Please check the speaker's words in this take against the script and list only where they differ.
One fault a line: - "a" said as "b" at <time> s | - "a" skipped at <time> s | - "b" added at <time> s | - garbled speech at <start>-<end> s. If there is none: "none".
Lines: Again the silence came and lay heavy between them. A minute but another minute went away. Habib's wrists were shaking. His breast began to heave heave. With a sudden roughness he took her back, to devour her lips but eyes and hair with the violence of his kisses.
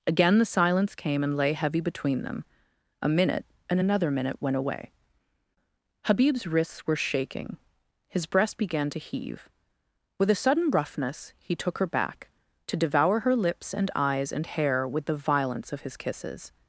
- "but" said as "and" at 3.7 s
- "heave" skipped at 9.5 s
- "but" said as "and" at 13.7 s